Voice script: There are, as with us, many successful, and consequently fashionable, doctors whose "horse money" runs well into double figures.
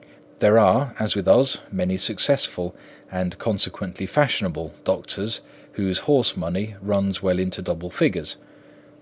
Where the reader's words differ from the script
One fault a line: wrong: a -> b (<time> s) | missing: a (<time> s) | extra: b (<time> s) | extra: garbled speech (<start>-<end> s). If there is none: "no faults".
no faults